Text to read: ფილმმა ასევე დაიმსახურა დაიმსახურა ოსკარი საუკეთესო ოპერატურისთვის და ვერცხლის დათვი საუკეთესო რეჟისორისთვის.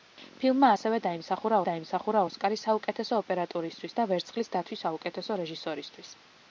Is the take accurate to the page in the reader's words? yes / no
yes